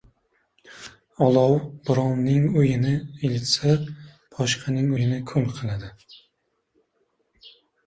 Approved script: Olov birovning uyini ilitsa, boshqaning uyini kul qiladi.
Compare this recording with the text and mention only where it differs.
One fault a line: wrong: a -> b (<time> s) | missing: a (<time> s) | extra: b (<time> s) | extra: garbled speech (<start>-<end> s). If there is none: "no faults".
no faults